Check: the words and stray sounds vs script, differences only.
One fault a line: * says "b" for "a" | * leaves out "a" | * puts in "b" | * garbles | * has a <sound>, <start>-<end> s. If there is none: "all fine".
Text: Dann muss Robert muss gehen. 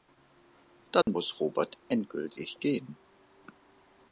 * has a dropout, 1.0-1.1 s
* says "endgültig" for "muss"